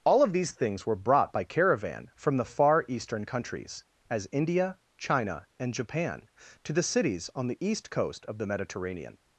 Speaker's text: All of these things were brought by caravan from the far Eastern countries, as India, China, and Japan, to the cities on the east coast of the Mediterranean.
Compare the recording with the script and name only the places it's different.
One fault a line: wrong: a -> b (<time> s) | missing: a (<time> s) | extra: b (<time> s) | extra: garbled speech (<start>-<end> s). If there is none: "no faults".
no faults